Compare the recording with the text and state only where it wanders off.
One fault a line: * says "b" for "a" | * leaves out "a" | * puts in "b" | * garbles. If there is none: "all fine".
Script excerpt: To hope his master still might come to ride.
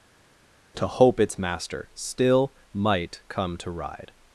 * says "its" for "his"